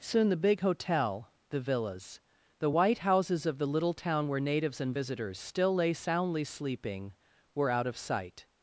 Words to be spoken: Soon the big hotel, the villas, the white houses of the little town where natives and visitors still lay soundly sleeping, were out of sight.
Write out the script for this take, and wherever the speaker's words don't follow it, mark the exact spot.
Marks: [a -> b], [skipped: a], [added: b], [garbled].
Soon the big hotel, the villas, the white houses of the little town where natives and visitors still lay soundly sleeping, were out of sight.